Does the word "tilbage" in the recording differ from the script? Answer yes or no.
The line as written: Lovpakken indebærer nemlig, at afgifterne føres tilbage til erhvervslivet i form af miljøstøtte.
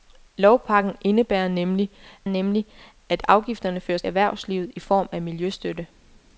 yes